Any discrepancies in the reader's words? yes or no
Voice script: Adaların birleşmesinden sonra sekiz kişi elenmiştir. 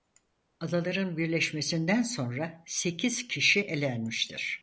no